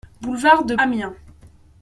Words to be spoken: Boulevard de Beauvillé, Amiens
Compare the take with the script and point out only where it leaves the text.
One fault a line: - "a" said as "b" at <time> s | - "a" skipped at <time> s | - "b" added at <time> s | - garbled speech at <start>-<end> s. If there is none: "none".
- "Beauvillé" skipped at 0.8 s